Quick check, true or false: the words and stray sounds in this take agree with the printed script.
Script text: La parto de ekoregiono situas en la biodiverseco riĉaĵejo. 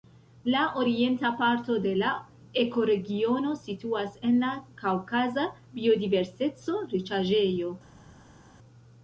false